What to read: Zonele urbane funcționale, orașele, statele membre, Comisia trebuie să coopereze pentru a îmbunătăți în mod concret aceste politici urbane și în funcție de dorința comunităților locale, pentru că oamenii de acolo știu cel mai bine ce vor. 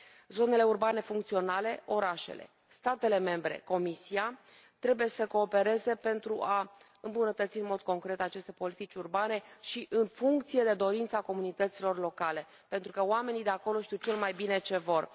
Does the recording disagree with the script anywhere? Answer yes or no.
no